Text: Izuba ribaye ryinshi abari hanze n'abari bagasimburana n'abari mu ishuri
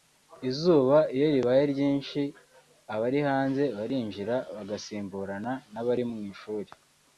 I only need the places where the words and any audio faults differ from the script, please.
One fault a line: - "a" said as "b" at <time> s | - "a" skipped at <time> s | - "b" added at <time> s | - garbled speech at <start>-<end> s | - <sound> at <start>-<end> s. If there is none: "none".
- "iyo" added at 1.1 s
- "n'abari" said as "barinjira" at 3.8 s